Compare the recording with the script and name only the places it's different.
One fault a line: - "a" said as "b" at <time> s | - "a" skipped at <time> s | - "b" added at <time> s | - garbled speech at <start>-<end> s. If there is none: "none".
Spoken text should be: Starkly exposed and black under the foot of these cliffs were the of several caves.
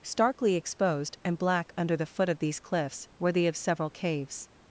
none